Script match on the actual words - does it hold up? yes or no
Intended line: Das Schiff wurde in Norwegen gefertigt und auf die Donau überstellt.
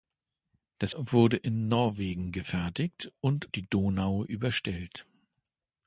no